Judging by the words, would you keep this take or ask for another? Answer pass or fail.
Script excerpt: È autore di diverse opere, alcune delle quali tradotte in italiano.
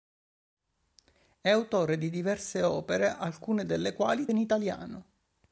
fail